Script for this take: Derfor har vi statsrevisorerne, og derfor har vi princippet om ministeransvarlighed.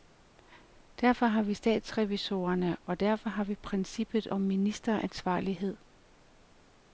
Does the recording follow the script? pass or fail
pass